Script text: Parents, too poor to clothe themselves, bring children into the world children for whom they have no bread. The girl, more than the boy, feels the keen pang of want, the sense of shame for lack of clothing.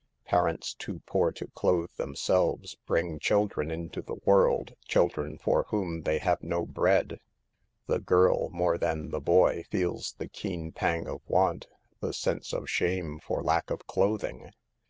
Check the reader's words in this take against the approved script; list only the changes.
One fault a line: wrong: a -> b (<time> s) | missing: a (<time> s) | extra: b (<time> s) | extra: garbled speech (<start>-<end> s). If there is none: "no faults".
no faults